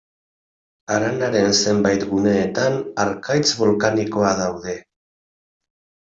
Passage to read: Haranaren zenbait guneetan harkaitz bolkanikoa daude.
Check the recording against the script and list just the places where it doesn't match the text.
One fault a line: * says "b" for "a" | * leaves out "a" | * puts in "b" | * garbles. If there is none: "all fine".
all fine